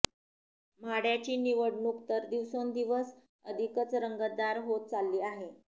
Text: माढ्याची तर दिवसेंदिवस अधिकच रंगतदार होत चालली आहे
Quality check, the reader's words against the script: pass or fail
fail